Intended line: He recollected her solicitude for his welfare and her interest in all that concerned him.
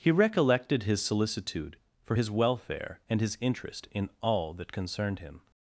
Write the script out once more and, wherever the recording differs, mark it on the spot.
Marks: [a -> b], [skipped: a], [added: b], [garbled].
He recollected [her -> his] solicitude for his welfare and [her -> his] interest in all that concerned him.